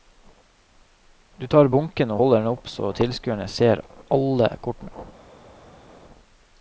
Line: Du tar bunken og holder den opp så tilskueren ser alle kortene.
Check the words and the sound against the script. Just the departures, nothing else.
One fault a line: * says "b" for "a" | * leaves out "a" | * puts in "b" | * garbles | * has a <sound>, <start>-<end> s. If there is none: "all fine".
all fine